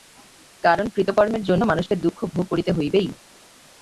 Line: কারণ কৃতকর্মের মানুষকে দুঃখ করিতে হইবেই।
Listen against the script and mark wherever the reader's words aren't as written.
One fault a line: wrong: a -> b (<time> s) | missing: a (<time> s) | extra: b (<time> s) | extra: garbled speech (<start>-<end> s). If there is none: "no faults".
extra: জন্য (1.4 s)
extra: ভোগ (2.3 s)